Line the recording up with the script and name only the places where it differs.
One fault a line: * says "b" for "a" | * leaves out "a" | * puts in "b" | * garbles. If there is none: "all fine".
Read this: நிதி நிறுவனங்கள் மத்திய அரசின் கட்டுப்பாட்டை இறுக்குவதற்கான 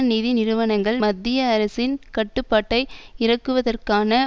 all fine